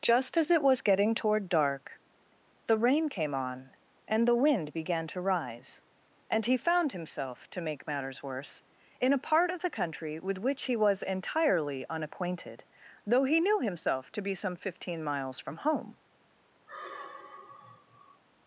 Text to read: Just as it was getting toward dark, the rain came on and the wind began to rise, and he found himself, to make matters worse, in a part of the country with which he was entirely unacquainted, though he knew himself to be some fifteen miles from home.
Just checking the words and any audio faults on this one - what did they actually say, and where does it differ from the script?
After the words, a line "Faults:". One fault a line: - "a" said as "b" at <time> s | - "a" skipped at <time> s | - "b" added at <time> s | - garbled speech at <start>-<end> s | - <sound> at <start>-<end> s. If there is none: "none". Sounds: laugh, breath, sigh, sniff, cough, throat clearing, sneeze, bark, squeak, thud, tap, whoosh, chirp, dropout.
Just as it was getting toward dark, the rain came on and the wind began to rise, and he found himself, to make matters worse, in a part of the country with which he was entirely unacquainted, though he knew himself to be some fifteen miles from home.
Faults:
- sigh at 16.7-18.2 s